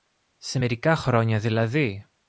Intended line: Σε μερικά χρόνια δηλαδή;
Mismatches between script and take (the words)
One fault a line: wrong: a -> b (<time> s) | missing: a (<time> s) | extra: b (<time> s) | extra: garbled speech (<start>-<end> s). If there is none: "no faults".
no faults